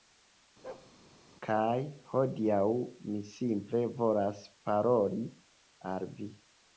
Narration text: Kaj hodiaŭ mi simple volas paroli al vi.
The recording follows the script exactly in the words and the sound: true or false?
false